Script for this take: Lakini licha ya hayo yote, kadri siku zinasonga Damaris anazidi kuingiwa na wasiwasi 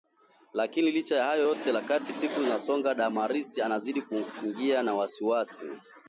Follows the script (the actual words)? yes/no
yes